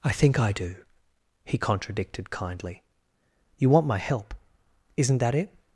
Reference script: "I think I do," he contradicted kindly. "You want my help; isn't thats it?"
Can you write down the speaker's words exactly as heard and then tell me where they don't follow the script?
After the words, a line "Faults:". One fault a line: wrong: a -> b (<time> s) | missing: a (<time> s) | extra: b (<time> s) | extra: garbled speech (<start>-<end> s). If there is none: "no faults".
"I think I do," he contradicted kindly. "You want my help; isn't that it?"
Faults:
wrong: thats -> that (5.2 s)